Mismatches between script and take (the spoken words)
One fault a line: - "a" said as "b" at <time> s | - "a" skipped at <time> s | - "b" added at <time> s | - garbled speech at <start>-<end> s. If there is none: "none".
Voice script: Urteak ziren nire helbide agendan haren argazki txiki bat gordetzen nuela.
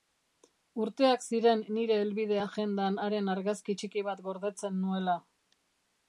none